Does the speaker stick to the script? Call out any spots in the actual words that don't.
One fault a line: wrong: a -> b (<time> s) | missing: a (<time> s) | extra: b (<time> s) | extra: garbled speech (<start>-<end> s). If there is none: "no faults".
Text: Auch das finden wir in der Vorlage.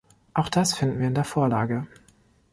no faults